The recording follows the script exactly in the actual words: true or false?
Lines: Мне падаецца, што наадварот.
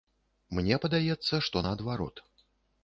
true